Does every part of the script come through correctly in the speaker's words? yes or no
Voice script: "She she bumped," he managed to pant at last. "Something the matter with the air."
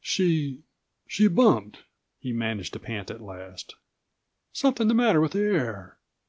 yes